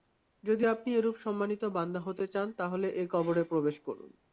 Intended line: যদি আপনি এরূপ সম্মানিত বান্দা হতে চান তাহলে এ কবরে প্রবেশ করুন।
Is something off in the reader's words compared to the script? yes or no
no